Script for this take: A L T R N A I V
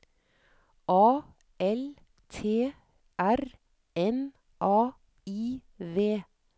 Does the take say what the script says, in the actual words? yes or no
yes